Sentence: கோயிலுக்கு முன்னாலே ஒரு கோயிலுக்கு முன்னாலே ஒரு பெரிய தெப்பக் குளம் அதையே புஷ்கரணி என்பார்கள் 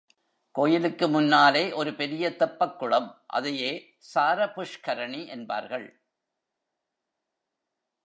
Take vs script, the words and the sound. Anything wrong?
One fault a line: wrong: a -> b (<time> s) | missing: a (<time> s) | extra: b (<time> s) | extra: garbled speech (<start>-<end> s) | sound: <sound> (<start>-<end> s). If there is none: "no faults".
missing: கோயிலுக்கு முன்னாலே ஒரு (1.9 s)
extra: சார (4.0 s)